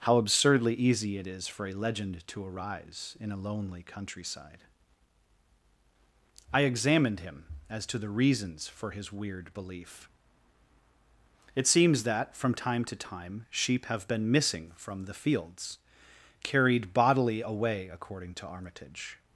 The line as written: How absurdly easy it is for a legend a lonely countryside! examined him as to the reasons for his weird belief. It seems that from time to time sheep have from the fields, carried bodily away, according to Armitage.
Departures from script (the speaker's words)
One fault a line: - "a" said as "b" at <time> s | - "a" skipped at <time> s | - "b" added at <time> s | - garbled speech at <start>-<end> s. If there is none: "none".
- "to arise in" added at 2.3 s
- "I" added at 6.5 s
- "been missing" added at 14.1 s